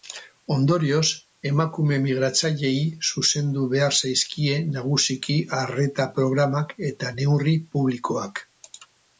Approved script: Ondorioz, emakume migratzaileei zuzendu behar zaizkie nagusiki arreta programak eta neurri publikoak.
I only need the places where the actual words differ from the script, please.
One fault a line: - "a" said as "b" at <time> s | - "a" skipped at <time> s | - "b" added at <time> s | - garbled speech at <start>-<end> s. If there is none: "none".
none